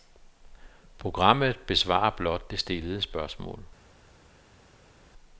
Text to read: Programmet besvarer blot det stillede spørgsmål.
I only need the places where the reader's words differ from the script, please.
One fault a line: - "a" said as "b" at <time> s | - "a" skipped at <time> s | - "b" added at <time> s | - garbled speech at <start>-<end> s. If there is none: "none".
none